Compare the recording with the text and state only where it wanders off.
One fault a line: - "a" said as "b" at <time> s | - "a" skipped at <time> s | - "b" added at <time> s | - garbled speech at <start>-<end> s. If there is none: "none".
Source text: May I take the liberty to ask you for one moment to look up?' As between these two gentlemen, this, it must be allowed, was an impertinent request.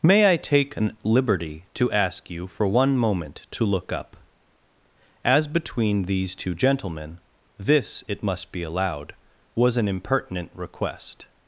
- "the" said as "an" at 0.8 s